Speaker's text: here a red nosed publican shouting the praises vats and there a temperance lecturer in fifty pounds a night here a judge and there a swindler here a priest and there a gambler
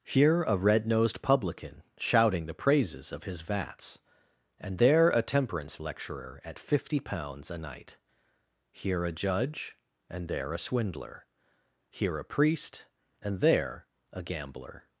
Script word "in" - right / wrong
wrong